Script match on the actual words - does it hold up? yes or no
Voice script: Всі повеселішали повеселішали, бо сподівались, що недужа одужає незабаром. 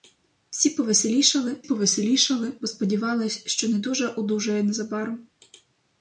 yes